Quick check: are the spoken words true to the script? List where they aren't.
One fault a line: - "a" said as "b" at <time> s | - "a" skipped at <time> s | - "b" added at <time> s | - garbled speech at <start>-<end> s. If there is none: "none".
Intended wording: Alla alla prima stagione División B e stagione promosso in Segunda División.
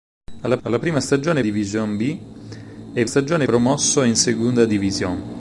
none